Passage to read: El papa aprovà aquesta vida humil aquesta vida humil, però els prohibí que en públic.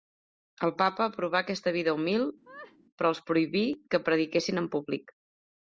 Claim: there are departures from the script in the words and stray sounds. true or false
true